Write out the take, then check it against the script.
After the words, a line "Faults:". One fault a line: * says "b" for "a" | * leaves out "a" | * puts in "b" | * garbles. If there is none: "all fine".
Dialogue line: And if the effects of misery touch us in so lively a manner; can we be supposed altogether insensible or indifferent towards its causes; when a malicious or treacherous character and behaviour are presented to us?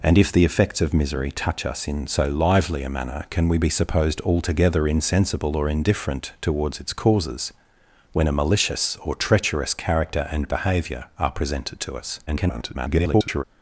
And if the effects of misery touch us in so lively a manner; can we be supposed altogether insensible or indifferent towards its causes; when a malicious or treacherous character and behaviour are presented to us? [garbled]
Faults:
* garbles